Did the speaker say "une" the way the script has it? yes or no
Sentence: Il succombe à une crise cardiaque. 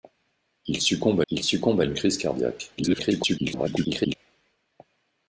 yes